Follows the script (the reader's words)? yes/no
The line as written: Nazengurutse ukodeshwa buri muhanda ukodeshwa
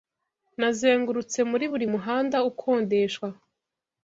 no